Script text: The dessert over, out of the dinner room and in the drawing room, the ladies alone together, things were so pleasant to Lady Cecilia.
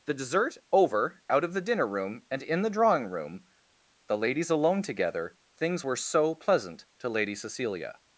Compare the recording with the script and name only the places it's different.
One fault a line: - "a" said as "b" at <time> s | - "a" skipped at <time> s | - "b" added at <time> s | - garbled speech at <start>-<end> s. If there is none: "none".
none